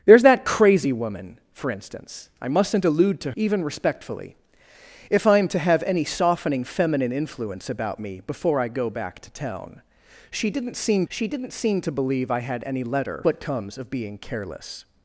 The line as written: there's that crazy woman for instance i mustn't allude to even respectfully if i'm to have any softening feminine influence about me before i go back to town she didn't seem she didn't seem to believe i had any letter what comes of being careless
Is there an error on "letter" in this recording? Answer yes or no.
no